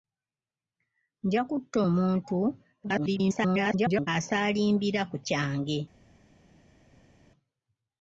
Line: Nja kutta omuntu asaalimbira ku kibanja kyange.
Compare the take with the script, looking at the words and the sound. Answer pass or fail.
fail